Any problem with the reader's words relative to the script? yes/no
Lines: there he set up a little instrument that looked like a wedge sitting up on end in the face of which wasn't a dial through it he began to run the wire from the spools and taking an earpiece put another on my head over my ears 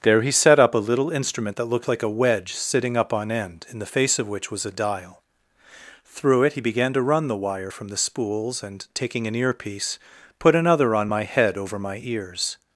yes